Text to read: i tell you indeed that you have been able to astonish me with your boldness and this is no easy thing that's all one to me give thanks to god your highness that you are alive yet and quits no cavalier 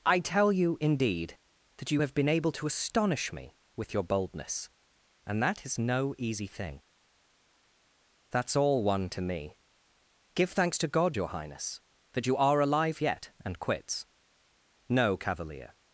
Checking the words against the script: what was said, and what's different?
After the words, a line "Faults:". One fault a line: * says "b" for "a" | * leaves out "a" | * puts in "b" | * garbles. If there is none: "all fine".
i tell you indeed that you have been able to astonish me with your boldness and that is no easy thing that's all one to me give thanks to god your highness that you are alive yet and quits no cavalier
Faults:
* says "that" for "this"